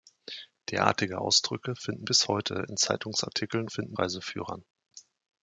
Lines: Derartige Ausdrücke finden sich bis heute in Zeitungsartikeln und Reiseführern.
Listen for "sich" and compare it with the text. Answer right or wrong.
wrong